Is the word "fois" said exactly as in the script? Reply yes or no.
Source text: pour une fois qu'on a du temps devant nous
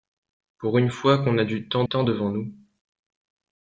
yes